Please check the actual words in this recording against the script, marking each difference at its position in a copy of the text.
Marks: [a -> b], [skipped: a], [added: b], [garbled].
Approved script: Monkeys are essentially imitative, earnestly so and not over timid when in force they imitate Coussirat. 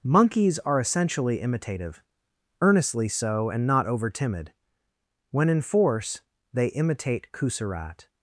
Monkeys are essentially imitative, earnestly so and not over timid when in force they imitate Coussirat.